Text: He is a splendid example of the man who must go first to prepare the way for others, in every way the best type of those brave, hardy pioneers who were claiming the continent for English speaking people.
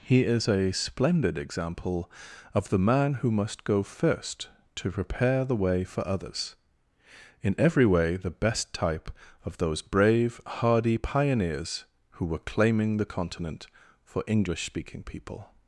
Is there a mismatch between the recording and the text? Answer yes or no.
no